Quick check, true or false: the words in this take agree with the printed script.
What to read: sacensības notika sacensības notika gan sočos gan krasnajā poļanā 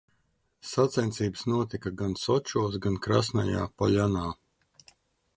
false